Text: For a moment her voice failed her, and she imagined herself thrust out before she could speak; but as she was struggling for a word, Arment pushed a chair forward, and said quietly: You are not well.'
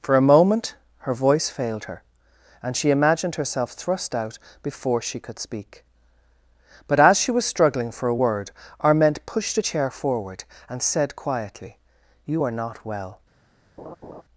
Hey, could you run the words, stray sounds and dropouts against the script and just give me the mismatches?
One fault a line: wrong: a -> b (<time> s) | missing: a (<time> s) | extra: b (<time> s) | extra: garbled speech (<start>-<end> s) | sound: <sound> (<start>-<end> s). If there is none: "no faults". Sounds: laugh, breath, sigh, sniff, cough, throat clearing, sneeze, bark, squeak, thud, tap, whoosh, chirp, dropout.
sound: laugh (13.8-14.2 s)